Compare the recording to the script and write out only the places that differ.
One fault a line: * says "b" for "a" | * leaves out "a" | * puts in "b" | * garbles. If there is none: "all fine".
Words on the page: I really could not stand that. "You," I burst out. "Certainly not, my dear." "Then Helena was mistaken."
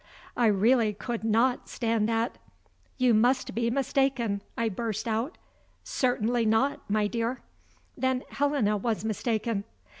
* puts in "must be mistaken"